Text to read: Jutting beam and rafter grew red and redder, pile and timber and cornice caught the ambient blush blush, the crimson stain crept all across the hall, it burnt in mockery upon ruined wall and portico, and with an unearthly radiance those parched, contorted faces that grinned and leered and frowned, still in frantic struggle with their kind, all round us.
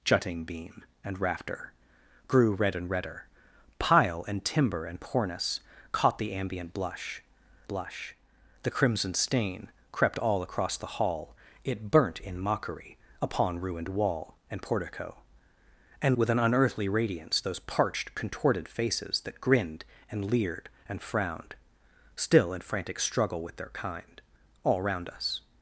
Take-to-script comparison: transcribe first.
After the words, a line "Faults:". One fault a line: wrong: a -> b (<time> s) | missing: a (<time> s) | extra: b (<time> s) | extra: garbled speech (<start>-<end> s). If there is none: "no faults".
Jutting beam and rafter grew red and redder, pile and timber and cornice caught the ambient blush blush, the crimson stain crept all across the hall, it burnt in mockery upon ruined wall and portico, and with an unearthly radiance those parched, contorted faces that grinned and leered and frowned, still in frantic struggle with their kind, all round us.
Faults:
no faults